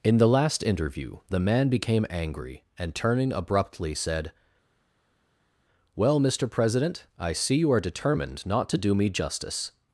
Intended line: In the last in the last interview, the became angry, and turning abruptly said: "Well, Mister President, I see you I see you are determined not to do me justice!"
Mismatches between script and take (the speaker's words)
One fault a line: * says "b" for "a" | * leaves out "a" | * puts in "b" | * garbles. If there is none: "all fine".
* says "interview" for "in"
* says "man" for "last interview the"
* leaves out "I see you"